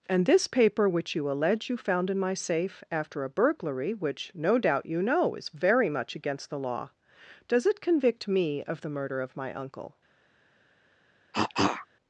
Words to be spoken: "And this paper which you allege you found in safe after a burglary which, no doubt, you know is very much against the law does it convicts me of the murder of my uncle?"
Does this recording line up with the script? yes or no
no